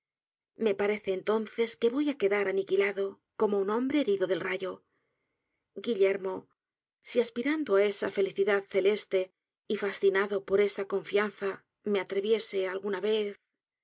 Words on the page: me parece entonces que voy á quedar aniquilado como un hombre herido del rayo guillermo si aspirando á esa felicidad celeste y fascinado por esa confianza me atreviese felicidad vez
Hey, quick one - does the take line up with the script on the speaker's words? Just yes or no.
no